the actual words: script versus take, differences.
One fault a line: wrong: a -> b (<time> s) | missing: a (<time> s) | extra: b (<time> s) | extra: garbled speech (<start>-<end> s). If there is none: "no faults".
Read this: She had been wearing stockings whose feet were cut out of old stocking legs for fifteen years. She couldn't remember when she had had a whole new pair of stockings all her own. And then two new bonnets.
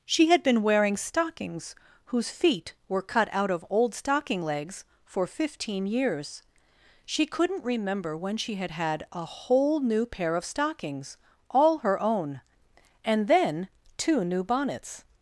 no faults